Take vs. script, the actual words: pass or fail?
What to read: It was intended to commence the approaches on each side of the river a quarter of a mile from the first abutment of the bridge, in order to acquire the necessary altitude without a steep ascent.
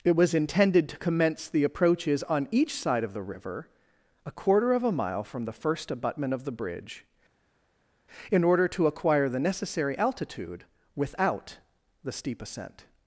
fail